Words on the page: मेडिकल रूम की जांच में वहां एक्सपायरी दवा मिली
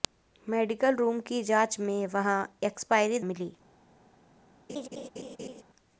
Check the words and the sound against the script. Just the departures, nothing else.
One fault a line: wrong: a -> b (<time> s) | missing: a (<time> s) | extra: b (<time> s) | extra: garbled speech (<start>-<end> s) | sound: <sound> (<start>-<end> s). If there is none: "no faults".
missing: दवा (3.2 s)
sound: laugh (4.7-5.6 s)